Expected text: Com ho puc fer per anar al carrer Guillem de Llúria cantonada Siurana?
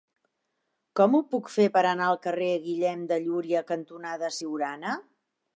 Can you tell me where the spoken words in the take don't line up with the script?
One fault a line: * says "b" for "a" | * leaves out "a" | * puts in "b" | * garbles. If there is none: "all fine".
all fine